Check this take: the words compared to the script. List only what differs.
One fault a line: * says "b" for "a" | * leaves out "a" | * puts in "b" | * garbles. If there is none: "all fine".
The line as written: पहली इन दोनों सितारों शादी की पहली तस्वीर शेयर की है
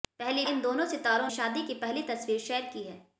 all fine